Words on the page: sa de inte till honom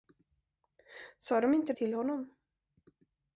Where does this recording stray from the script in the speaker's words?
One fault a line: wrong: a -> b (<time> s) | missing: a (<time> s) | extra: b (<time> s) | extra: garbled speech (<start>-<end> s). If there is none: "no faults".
no faults